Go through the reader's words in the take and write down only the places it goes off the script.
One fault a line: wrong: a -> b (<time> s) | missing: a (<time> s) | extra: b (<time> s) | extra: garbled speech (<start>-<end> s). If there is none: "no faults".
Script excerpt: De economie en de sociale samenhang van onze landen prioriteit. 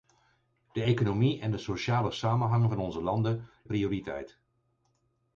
no faults